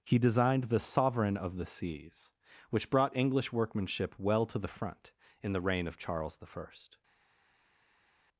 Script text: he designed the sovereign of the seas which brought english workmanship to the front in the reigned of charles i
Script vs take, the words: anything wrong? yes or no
yes